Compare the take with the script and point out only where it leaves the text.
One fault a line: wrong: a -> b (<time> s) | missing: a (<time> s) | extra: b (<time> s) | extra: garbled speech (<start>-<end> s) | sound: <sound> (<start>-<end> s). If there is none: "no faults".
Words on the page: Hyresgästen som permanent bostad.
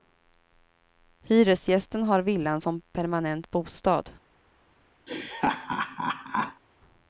extra: har villan (2.0 s)
sound: laugh (5.1-6.6 s)